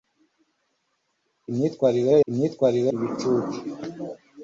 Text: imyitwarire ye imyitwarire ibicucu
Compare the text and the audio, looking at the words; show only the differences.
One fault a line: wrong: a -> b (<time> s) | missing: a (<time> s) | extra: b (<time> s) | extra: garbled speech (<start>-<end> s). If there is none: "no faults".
no faults